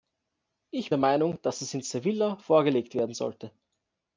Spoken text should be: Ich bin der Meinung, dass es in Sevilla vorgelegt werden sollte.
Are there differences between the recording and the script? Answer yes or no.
yes